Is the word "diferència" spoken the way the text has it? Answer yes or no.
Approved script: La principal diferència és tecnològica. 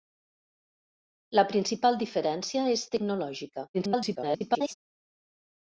yes